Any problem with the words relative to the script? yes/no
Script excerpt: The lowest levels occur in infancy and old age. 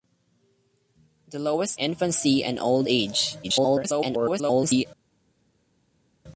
yes